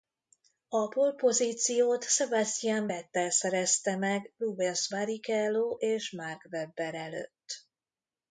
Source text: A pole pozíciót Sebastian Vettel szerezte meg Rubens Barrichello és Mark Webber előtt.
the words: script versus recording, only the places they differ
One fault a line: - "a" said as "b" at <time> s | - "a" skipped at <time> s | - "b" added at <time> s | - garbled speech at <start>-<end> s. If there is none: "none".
none